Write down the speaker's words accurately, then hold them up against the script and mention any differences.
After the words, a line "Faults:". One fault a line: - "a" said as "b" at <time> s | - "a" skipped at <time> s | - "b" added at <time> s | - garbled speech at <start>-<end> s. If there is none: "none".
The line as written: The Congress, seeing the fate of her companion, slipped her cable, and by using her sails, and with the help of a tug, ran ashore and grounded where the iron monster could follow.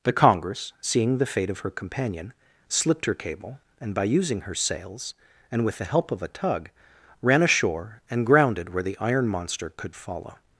The Congress, seeing the fate of her companion, slipped her cable, and by using her sails, and with the help of a tug, ran ashore and grounded where the iron monster could follow.
Faults:
none